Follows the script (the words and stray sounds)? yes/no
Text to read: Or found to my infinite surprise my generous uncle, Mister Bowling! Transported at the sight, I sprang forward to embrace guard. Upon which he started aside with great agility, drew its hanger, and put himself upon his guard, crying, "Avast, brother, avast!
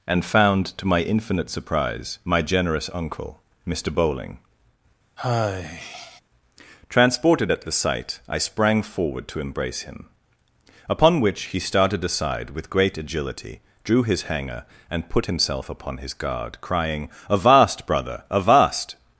no